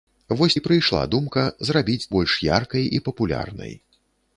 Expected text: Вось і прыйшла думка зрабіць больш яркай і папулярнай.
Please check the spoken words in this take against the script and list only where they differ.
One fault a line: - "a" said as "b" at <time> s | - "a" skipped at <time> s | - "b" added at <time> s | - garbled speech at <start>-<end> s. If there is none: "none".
none